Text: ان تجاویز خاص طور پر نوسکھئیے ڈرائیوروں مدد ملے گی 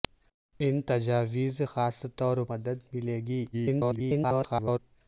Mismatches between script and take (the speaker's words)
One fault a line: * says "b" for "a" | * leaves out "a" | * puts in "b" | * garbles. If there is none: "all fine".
* leaves out "پر نوسکھئیے ڈرائیوروں"
* garbles